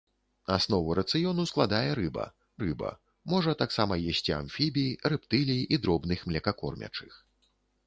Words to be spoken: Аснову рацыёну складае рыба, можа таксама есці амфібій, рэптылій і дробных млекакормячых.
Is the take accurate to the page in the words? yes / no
no